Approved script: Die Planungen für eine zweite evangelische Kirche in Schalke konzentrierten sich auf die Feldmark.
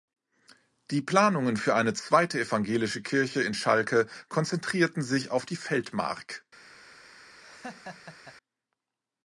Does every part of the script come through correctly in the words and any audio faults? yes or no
no